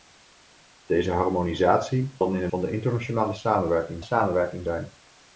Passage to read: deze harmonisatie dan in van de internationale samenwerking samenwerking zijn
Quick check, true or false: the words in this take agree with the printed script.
true